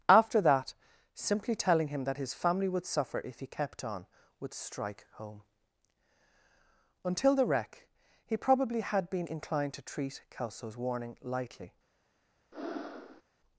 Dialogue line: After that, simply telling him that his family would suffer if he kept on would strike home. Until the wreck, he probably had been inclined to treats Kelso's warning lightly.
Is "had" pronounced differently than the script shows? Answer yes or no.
no